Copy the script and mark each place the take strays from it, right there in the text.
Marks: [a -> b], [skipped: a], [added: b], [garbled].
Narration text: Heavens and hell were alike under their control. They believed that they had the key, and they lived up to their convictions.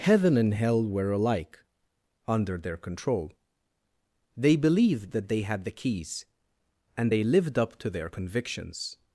[Heavens -> Heaven] and hell were alike under their control. They believed that they had the [key, -> keys] and they lived up to their convictions.